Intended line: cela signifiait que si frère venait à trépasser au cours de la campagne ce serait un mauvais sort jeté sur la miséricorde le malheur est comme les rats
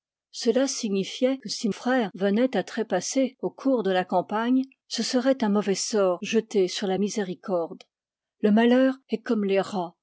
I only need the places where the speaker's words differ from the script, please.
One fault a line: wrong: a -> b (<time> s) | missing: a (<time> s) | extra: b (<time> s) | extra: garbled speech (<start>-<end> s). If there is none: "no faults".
no faults